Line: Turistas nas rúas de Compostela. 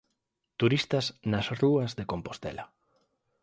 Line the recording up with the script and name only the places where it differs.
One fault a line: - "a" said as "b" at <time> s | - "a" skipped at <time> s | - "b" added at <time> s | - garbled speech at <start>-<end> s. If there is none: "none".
none